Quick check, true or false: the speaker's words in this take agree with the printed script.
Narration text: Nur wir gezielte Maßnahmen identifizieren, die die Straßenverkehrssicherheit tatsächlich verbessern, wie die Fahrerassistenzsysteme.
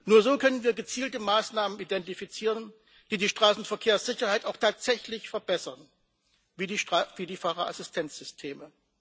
false